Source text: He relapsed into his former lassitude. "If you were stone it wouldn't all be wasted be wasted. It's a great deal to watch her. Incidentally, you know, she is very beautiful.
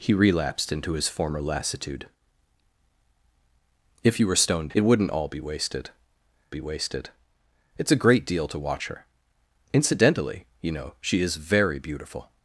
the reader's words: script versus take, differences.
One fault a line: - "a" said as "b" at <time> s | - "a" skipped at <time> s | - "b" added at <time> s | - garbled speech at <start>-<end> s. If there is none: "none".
none